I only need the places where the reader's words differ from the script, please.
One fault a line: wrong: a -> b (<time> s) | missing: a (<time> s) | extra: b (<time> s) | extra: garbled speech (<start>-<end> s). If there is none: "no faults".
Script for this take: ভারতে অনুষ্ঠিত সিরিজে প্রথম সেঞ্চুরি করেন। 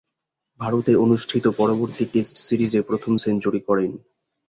extra: পরবর্তী টেস্ট (1.6 s)